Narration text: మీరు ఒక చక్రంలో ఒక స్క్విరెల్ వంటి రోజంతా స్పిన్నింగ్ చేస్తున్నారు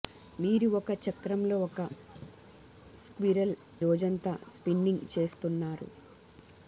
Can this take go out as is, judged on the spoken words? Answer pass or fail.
fail